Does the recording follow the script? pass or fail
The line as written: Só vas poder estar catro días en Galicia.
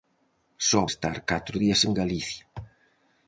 fail